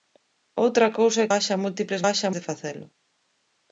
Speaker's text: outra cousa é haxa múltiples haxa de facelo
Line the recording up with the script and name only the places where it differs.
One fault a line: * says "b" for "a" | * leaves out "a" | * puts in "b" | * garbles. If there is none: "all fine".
all fine